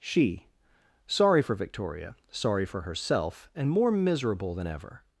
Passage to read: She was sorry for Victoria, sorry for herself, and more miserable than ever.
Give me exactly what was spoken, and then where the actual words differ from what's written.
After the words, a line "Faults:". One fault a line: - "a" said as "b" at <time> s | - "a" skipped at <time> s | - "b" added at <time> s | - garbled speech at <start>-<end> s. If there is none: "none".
She sorry for Victoria, sorry for herself, and more miserable than ever.
Faults:
- "was" skipped at 0.5 s